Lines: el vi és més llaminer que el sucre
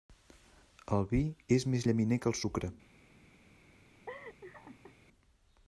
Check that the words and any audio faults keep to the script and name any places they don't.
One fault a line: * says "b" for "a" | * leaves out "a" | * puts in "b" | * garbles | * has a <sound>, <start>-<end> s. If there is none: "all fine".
* has a laugh, 4.1-5.0 s